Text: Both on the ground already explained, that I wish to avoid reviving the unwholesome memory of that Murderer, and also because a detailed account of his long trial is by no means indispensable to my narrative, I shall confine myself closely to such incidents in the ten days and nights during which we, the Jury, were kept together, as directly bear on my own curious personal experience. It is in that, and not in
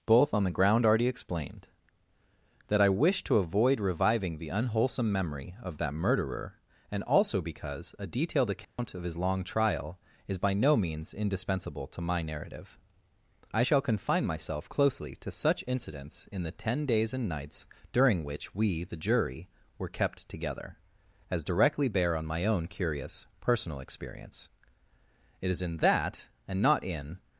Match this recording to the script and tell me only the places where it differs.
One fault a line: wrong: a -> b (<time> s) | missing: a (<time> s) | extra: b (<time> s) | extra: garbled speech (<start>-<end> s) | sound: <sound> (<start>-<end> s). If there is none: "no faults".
sound: dropout (8.6-8.8 s)